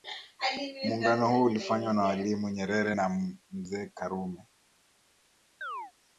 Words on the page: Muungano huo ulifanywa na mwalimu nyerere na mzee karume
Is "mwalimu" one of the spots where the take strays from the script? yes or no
no